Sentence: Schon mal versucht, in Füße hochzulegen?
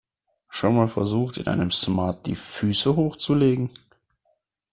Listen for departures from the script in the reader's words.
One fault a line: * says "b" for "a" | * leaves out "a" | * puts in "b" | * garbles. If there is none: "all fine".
* puts in "einem Smart die"